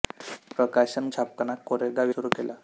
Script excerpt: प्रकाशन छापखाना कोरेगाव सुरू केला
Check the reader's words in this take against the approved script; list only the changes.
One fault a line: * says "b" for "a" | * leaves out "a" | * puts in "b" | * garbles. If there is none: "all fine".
all fine